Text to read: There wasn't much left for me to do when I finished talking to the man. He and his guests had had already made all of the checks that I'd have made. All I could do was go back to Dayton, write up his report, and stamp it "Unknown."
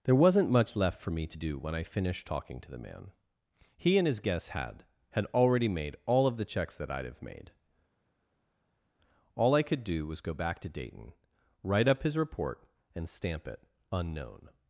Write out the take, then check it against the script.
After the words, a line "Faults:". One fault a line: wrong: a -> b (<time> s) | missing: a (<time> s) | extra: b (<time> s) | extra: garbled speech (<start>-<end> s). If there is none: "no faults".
There wasn't much left for me to do when I finished talking to the man. He and his guests had had already made all of the checks that I'd have made. All I could do was go back to Dayton, write up his report, and stamp it "Unknown."
Faults:
no faults